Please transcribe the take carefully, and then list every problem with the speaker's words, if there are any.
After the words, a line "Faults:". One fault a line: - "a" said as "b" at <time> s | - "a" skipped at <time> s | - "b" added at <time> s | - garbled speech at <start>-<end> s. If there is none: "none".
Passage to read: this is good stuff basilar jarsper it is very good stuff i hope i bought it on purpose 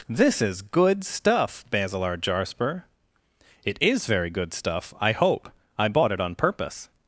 this is good stuff basilar jarsper it is very good stuff i hope i bought it on purpose
Faults:
none